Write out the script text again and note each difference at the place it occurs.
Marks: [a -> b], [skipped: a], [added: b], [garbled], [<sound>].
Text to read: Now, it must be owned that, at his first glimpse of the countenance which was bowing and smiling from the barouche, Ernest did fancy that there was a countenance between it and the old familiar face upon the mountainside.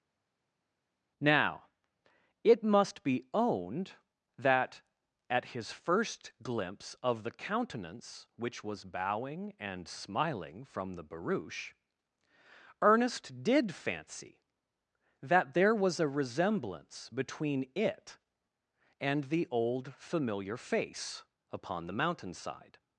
Now, it must be owned that, at his first glimpse of the countenance which was bowing and smiling from the barouche, Ernest did fancy that there was a [countenance -> resemblance] between it and the old familiar face upon the mountainside.